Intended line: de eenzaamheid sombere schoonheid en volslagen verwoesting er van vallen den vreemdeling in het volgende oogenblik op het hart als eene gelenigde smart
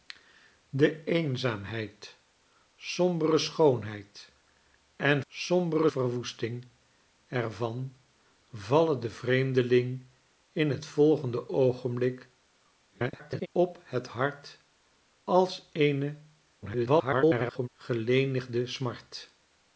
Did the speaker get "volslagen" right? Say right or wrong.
wrong